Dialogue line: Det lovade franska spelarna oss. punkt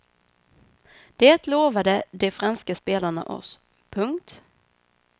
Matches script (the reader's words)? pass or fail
fail